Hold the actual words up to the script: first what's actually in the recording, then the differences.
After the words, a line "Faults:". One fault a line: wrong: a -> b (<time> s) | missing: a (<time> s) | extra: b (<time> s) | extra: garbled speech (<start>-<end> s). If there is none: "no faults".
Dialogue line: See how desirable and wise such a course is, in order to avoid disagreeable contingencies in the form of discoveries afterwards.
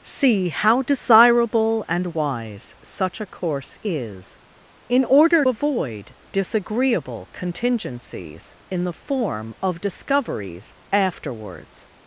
See how desirable and wise such a course is, in order avoid disagreeable contingencies in the form of discoveries afterwards.
Faults:
missing: to (5.5 s)